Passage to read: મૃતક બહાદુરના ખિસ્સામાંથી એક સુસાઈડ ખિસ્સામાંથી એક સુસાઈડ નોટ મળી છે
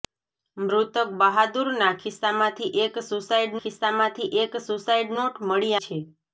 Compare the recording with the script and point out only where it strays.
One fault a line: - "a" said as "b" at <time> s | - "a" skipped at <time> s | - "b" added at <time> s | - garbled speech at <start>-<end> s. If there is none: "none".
none